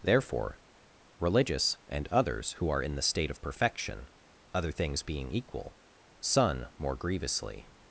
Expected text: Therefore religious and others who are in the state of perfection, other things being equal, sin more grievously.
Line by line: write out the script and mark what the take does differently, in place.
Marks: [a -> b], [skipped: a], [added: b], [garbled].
Therefore religious and others who are in the state of perfection, other things being equal, [sin -> sun] more grievously.